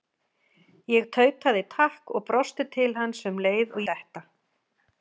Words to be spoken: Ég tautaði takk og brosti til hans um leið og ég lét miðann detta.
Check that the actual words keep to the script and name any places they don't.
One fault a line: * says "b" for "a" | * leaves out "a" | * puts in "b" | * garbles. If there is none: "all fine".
* leaves out "ég lét miðann"